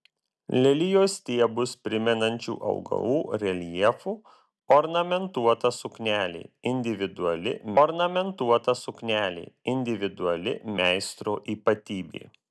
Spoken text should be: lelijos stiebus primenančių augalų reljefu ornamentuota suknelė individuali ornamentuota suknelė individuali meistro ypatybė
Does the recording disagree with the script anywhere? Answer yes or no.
no